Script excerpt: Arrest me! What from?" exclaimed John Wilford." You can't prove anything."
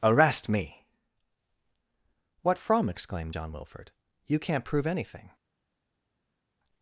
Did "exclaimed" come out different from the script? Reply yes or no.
no